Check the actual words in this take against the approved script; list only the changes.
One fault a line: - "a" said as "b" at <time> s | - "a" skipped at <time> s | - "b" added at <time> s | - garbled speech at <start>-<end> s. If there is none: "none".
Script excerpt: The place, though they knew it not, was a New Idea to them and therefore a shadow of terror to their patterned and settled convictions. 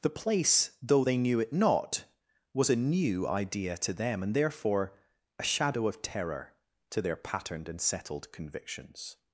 none